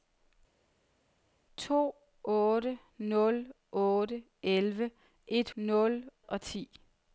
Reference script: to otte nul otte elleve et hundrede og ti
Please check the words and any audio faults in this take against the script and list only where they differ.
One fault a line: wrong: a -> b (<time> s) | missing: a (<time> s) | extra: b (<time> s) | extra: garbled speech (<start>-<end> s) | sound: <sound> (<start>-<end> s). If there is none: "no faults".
wrong: hundrede -> nul (5.6 s)